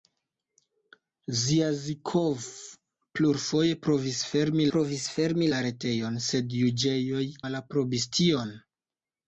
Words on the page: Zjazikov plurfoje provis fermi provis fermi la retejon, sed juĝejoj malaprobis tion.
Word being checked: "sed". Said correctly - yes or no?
yes